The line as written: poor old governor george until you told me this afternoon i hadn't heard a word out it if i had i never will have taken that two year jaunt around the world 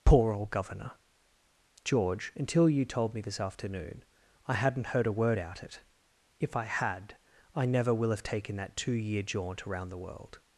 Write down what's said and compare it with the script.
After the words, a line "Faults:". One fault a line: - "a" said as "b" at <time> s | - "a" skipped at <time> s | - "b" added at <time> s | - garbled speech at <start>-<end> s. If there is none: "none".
poor old governor george until you told me this afternoon i hadn't heard a word out it if i had i never will have taken that two year jaunt around the world
Faults:
none